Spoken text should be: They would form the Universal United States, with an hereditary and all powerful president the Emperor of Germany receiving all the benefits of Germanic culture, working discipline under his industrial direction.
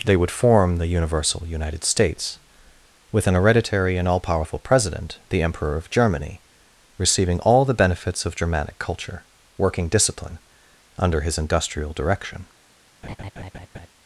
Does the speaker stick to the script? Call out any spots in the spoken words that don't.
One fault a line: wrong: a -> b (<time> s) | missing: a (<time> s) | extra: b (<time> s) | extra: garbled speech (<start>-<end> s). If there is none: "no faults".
no faults